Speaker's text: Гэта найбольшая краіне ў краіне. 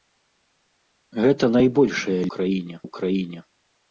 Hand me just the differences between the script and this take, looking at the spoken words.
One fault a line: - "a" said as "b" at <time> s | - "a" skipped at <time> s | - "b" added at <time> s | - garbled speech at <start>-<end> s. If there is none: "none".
none